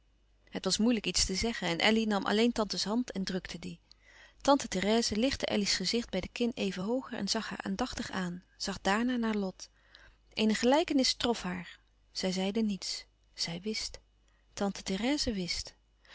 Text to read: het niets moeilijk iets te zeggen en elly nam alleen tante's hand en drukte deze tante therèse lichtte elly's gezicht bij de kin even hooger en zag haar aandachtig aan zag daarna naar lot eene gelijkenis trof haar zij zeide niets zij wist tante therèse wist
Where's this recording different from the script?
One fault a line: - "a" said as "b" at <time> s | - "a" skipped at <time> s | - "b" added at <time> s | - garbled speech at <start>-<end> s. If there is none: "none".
- "niets" said as "was" at 0.7 s
- "deze" said as "die" at 3.6 s